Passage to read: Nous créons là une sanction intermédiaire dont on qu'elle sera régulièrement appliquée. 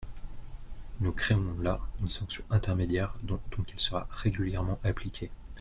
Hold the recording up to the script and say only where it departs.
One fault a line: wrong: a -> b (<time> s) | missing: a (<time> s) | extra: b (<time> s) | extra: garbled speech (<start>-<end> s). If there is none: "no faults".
no faults